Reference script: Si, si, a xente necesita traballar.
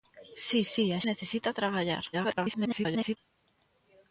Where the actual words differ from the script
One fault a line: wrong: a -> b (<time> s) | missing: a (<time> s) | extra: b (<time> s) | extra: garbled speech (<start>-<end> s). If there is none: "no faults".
missing: xente (1.0 s)
extra: garbled speech (2.1-3.2 s)